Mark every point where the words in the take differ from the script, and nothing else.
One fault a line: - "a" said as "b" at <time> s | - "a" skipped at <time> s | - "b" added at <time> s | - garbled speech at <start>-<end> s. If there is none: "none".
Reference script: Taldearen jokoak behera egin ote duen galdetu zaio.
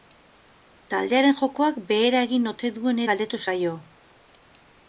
none